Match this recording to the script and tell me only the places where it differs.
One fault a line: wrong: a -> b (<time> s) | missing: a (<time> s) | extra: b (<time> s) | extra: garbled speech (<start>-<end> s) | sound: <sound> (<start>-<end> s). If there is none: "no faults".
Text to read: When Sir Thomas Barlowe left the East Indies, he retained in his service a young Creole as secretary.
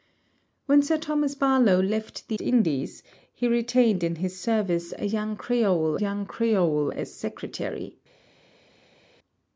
missing: East (2.4 s)
extra: young Creole (5.9 s)